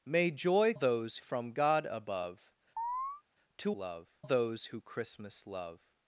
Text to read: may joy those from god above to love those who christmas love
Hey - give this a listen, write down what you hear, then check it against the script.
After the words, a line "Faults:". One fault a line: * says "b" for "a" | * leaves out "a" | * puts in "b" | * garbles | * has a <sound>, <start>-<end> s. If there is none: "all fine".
may joy those from god above to love those who christmas love
Faults:
* has a chirp, 2.8-3.2 s